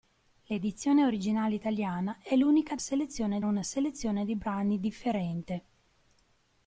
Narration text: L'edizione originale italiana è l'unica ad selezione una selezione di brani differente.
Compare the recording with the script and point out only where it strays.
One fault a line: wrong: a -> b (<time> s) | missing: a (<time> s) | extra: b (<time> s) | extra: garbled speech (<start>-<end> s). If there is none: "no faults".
no faults